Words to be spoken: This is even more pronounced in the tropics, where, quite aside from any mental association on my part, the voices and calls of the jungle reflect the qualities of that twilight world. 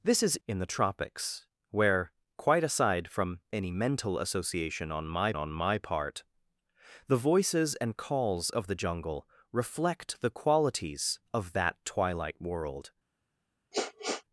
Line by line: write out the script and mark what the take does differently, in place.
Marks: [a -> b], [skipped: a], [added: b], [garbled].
This is [skipped: even more pronounced] in the tropics, where, quite aside from any mental association on my [added: on my] part, the voices and calls of the jungle reflect the qualities of that twilight world.